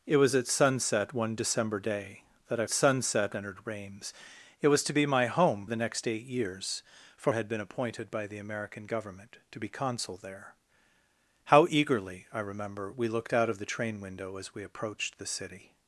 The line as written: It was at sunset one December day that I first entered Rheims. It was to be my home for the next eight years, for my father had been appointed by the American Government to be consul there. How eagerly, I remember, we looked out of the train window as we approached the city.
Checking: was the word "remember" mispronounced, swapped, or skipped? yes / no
no